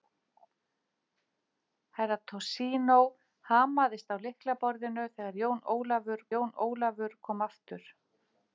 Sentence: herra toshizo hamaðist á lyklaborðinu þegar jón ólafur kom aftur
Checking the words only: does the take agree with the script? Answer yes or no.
no